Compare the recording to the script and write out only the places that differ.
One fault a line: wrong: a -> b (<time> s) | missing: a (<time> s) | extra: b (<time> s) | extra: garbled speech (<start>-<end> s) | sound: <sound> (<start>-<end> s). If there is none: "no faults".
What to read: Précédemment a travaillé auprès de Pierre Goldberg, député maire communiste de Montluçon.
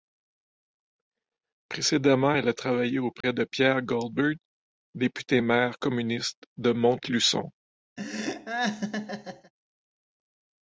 extra: elle (2.3 s)
sound: dropout (3.2-3.2 s)
sound: laugh (8.0-9.5 s)